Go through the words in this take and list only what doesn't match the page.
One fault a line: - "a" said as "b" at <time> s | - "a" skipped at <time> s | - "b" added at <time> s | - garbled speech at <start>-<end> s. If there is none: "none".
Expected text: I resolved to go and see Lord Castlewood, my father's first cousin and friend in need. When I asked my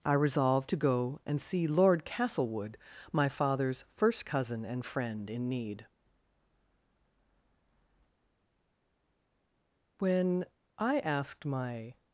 none